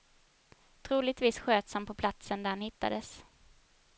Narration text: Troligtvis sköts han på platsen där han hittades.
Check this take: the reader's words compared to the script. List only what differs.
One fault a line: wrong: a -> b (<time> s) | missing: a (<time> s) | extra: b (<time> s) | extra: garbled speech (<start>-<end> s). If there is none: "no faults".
no faults